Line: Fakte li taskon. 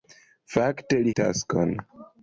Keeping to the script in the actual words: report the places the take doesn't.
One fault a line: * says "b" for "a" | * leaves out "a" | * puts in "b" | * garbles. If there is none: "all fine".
all fine